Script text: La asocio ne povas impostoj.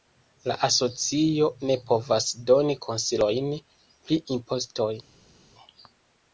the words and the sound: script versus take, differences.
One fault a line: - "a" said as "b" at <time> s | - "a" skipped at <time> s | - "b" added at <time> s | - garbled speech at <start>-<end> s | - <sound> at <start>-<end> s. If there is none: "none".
- "doni konsilojn pri" added at 2.5 s